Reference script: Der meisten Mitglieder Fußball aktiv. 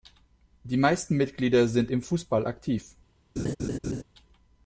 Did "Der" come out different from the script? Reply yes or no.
yes